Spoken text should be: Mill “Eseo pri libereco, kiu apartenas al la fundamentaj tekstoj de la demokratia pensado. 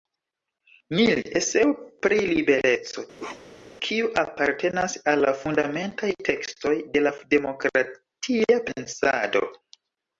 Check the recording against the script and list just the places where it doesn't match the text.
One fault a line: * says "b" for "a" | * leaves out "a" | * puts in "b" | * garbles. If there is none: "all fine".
all fine